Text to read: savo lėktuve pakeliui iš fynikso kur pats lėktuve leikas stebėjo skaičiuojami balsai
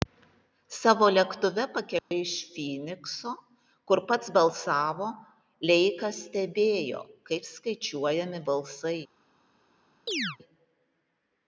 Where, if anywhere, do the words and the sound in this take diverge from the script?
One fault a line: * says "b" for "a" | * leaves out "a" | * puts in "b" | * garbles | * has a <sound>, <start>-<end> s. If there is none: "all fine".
* has a dropout, 2.0-2.1 s
* says "balsavo" for "lėktuve"
* puts in "kaip"
* has a chirp, 10.1-10.4 s